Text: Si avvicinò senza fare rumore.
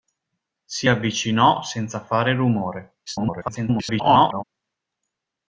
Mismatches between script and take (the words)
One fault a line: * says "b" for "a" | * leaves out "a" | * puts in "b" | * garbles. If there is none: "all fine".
* garbles